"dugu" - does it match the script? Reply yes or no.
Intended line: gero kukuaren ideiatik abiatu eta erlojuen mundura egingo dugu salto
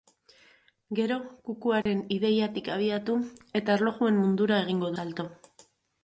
no